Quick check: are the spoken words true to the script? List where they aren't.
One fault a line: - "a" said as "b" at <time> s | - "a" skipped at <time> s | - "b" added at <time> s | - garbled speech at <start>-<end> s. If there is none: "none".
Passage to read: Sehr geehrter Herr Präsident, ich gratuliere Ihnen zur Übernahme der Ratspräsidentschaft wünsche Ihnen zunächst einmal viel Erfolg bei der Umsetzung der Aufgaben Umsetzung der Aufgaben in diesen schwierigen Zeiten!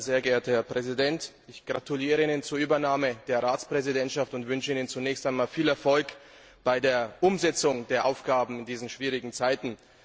- "und" added at 4.3 s
- "Umsetzung der Aufgaben" skipped at 8.6 s